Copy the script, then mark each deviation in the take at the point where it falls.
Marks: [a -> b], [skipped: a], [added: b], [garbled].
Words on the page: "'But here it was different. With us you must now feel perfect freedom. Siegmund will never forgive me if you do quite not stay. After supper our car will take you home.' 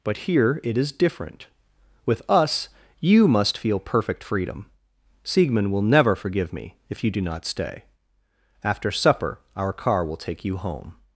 "'But here it [was -> is] different. With us you must [skipped: now] feel perfect freedom. Siegmund will never forgive me if you do [skipped: quite] not stay. After supper our car will take you home.'